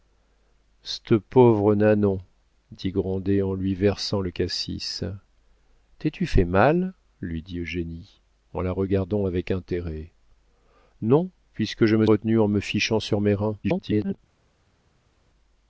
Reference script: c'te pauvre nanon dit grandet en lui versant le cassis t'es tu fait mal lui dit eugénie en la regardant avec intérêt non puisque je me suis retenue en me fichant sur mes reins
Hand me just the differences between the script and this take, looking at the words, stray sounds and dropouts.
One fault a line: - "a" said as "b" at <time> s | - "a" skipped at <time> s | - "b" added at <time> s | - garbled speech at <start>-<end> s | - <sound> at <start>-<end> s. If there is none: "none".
- "suis" skipped at 12.1 s
- garbled speech at 13.6-14.2 s